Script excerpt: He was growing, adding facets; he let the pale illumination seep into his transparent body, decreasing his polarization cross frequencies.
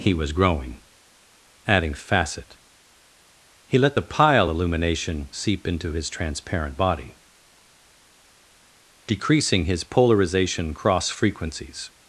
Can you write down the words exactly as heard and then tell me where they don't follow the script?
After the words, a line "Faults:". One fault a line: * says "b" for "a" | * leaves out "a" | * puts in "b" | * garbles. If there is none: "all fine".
He was growing, adding facet; he let the pile illumination seep into his transparent body, decreasing his polarization cross frequencies.
Faults:
* says "facet" for "facets"
* says "pile" for "pale"